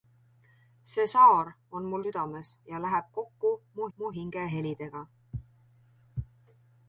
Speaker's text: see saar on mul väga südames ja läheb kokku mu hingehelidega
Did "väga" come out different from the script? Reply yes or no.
yes